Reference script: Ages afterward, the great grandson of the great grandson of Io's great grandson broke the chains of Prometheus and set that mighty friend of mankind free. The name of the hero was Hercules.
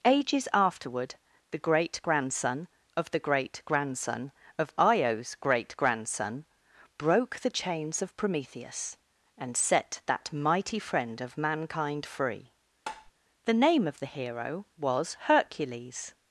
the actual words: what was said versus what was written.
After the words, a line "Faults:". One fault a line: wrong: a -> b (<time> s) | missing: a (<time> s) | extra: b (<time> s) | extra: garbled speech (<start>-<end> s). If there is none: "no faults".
Ages afterward, the great grandson of the great grandson of Io's great grandson broke the chains of Prometheus and set that mighty friend of mankind free. The name of the hero was Hercules.
Faults:
no faults